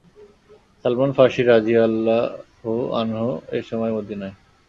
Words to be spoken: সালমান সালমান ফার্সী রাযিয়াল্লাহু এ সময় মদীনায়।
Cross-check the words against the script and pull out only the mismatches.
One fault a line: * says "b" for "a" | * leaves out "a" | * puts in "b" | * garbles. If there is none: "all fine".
* leaves out "সালমান"
* puts in "আনহু"